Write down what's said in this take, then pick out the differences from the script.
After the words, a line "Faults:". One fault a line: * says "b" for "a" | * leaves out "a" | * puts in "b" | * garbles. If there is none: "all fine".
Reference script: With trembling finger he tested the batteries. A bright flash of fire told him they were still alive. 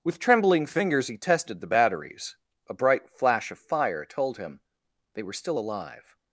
With trembling fingers he tested the batteries. A bright flash of fire told him they were still alive.
Faults:
* says "fingers" for "finger"